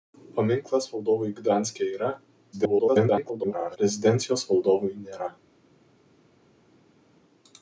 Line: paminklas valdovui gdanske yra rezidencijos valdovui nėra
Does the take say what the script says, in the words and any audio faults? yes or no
no